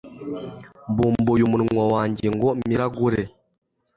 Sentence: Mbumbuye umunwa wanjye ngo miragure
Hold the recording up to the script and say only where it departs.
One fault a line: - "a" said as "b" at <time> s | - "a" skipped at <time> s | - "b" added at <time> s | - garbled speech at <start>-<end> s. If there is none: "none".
none